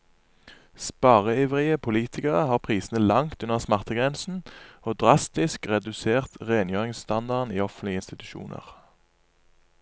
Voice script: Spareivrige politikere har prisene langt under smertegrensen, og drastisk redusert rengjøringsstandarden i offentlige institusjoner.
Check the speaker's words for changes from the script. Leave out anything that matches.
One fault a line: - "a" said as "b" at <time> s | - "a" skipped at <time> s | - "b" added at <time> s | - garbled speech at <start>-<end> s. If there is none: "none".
none